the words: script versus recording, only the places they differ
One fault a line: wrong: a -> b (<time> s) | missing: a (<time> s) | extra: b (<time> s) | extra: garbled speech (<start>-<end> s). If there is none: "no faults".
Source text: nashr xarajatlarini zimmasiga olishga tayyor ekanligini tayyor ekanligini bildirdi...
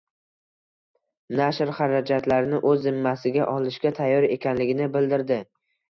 extra: o‘z (2.7 s)
missing: tayyor ekanligini (4.9 s)